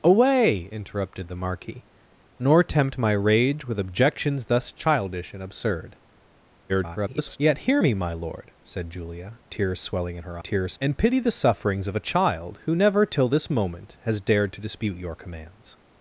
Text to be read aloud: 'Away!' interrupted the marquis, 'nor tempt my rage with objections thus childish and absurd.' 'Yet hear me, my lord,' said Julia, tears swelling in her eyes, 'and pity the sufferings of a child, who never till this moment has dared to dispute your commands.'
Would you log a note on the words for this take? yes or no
yes